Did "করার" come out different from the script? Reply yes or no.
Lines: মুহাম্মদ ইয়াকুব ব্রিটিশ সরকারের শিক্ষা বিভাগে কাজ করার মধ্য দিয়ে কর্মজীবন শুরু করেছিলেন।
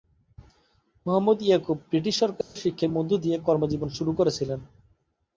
yes